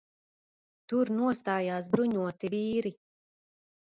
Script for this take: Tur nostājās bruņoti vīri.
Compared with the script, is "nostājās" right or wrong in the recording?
right